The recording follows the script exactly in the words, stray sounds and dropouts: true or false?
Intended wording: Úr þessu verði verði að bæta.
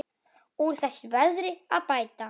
false